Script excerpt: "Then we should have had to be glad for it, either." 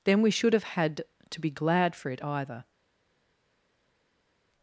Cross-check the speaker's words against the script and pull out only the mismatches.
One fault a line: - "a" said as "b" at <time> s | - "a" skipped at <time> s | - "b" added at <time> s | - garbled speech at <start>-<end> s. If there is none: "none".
none